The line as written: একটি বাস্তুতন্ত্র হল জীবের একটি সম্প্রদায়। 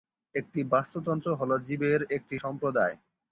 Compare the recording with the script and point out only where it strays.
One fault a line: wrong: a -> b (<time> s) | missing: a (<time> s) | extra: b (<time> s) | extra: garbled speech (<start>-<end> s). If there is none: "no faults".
no faults